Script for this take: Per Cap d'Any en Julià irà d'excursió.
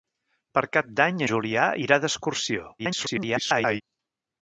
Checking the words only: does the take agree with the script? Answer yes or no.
no